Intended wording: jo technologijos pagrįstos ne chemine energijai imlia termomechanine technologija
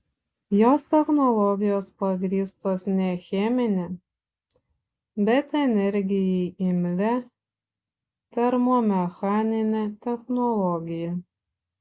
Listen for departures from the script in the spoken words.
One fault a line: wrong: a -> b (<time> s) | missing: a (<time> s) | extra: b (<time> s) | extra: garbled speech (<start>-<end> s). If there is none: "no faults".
wrong: jo -> jos (0.6 s)
extra: bet (5.3 s)